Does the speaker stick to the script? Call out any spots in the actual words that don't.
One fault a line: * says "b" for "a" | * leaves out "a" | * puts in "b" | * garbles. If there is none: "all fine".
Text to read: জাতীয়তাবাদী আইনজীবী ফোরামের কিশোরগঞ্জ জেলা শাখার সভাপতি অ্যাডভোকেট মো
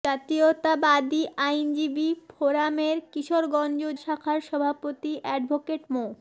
* leaves out "জেলা"